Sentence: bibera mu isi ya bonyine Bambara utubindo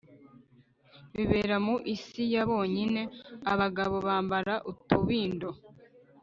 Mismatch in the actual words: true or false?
true